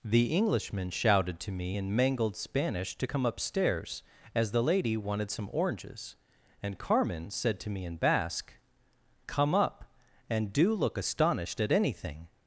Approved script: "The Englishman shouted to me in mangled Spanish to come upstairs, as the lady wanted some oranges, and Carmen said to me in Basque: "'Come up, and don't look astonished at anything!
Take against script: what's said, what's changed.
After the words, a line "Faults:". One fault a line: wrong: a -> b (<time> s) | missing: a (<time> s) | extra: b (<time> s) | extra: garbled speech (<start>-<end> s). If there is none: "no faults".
"The Englishman shouted to me in mangled Spanish to come upstairs, as the lady wanted some oranges, and Carmen said to me in Basque: "'Come up, and do look astonished at anything!
Faults:
wrong: don't -> do (10.5 s)